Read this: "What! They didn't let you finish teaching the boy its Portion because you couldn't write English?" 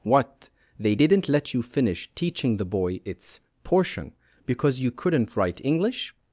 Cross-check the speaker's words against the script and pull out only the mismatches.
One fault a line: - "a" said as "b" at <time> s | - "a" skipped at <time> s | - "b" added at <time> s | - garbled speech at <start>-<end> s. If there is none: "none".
none